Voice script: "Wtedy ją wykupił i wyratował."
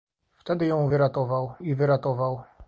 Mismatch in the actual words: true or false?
true